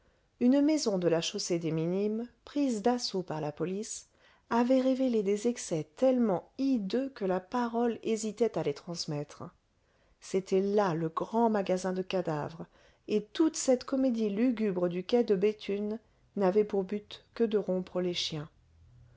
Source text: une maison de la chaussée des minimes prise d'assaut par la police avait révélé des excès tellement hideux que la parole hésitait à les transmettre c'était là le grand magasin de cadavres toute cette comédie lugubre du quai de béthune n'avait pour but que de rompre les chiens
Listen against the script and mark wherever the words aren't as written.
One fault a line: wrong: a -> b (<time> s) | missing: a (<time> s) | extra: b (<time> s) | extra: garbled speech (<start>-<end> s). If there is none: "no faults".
extra: et (13.1 s)